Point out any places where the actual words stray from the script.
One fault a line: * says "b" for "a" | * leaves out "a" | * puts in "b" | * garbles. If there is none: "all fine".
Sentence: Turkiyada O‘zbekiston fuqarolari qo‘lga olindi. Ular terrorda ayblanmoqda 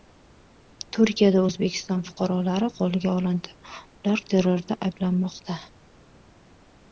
all fine